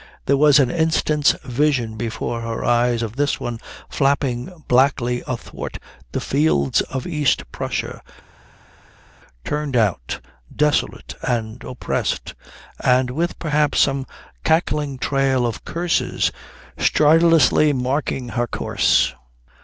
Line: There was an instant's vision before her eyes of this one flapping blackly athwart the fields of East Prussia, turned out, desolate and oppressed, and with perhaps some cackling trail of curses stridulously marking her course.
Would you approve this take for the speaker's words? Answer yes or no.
yes